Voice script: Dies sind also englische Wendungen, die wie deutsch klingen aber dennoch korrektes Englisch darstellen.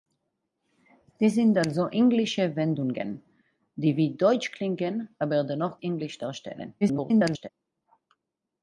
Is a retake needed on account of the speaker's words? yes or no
yes